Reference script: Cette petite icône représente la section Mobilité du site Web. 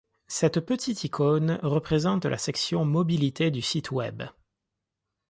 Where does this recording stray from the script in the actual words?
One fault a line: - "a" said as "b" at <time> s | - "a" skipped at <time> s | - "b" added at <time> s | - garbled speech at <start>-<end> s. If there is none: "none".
none